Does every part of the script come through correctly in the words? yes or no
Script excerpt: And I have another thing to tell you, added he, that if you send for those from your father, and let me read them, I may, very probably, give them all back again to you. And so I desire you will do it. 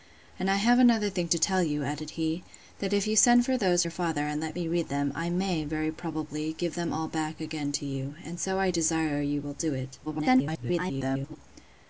no